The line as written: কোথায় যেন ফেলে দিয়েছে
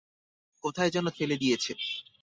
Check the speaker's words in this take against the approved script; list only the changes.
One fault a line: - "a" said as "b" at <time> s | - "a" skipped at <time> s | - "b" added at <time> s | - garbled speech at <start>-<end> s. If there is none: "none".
none